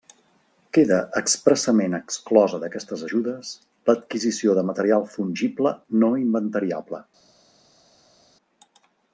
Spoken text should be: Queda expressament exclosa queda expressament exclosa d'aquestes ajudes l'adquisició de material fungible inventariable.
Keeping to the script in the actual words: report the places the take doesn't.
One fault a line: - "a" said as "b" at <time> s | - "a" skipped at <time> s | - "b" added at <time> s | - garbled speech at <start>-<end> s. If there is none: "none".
- "queda expressament exclosa" skipped at 2.6 s
- "no" added at 6.0 s